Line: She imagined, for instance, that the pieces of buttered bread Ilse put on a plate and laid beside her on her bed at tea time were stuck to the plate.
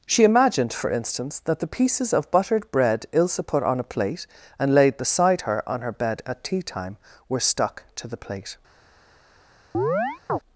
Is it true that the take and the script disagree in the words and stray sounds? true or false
true